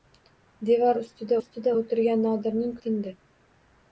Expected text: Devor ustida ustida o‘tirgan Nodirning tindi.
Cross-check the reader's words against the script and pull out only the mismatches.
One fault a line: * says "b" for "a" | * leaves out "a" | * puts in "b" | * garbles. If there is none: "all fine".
all fine